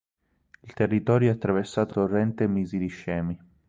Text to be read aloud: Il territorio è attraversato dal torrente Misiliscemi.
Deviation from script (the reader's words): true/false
true